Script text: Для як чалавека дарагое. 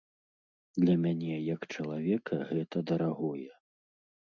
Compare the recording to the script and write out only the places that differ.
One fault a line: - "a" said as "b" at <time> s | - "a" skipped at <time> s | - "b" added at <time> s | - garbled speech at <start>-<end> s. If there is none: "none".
- "мяне" added at 1.0 s
- "гэта" added at 2.5 s